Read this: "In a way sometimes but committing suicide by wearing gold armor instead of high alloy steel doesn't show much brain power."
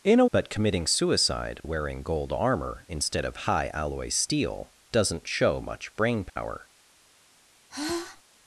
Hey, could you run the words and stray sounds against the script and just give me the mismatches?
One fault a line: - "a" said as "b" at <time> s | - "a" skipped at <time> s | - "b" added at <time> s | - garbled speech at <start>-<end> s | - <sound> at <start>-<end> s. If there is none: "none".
- "way sometimes" skipped at 0.2 s
- "by" skipped at 1.6 s
- dropout at 6.3-6.4 s
- sigh at 7.7-8.2 s